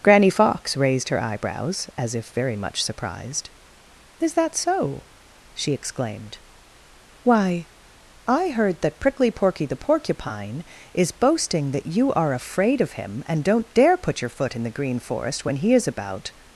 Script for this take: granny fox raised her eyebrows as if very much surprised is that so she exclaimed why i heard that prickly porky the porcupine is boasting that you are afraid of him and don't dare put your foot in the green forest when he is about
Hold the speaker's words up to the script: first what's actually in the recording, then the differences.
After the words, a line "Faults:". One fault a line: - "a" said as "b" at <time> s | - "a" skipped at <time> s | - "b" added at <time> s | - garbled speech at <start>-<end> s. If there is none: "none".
granny fox raised her eyebrows as if very much surprised is that so she exclaimed why i heard that prickly porky the porcupine is boasting that you are afraid of him and don't dare put your foot in the green forest when he is about
Faults:
none